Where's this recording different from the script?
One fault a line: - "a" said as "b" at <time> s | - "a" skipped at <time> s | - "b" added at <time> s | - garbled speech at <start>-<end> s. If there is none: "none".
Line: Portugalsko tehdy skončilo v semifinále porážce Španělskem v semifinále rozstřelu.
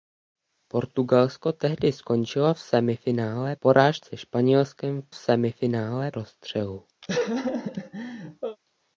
none